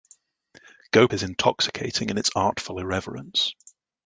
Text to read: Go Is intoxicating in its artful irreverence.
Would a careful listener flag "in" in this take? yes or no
no